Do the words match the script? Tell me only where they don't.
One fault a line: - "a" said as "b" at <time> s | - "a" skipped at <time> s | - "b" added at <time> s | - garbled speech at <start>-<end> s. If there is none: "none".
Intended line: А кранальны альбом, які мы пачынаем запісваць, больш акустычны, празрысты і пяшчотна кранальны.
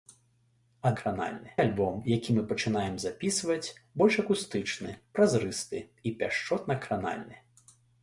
none